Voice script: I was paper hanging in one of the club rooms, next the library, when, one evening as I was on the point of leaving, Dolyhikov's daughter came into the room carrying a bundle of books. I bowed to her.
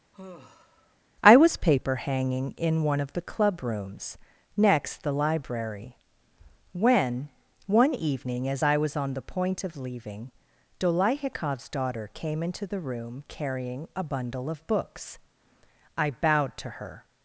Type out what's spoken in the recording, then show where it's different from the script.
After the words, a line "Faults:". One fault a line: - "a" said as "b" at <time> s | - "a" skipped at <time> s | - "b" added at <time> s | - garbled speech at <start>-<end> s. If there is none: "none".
I was paper hanging in one of the club rooms, next the library, when, one evening as I was on the point of leaving, Dolyhikov's daughter came into the room carrying a bundle of books. I bowed to her.
Faults:
none